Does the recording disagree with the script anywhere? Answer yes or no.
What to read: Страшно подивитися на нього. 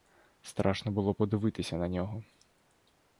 yes